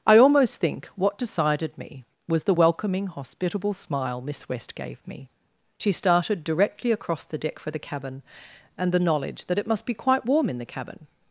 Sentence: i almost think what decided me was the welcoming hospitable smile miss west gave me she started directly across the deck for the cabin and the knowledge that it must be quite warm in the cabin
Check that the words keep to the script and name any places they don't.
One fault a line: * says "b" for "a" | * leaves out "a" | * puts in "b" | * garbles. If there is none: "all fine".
all fine